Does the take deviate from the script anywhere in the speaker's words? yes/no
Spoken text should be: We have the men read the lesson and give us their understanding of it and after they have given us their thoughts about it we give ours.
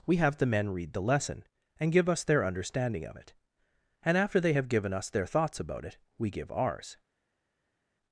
no